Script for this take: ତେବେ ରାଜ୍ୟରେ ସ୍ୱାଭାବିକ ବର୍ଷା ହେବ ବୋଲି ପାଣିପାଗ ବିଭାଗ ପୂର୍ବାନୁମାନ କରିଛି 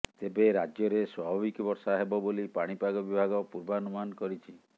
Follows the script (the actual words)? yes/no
yes